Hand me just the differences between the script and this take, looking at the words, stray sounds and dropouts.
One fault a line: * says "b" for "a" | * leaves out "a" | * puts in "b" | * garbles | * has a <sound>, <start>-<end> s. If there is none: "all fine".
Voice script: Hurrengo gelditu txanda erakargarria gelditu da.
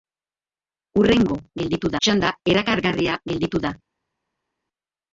all fine